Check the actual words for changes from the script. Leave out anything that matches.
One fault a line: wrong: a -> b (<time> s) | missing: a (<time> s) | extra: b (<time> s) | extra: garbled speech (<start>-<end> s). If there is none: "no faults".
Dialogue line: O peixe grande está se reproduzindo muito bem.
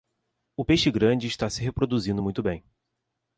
no faults